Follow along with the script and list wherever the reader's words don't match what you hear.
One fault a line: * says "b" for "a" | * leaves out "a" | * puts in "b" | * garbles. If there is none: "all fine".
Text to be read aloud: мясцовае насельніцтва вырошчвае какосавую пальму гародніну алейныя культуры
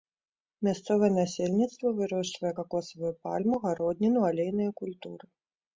all fine